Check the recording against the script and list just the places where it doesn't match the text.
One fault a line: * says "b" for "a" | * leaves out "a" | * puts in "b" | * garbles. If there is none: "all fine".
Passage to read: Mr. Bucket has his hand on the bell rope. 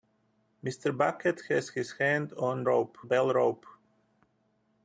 * says "rope" for "the"